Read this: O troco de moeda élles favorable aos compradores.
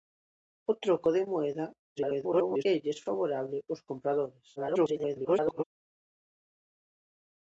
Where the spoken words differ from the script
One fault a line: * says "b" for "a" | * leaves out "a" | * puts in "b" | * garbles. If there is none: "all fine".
* garbles
* garbles